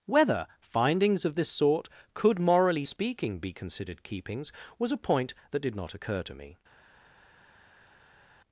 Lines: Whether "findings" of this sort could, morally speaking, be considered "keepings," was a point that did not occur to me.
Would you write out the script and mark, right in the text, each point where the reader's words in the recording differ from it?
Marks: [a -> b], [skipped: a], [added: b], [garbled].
Whether "findings" of this sort could, morally speaking, be considered "keepings," was a point that did not occur to me.